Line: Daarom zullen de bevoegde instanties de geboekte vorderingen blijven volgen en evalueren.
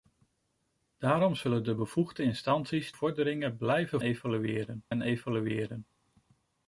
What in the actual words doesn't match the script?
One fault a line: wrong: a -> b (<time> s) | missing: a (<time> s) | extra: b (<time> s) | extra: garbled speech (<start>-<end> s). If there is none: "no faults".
missing: de geboekte (2.9 s)
wrong: volgen -> evalueren (4.0 s)